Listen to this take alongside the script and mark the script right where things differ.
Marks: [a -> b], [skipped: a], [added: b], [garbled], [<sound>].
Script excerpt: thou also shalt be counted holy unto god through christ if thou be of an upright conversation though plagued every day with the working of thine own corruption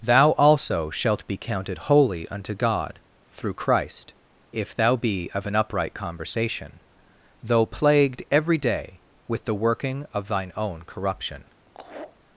thou also shalt be counted holy unto god through christ if thou be of an upright conversation though plagued every day with the working of thine own corruption [laugh]